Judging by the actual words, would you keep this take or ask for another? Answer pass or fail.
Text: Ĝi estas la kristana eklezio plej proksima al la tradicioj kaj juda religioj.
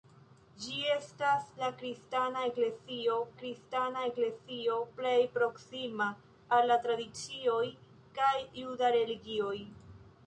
fail